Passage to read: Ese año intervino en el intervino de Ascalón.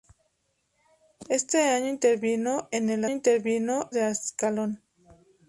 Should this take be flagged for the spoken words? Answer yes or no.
no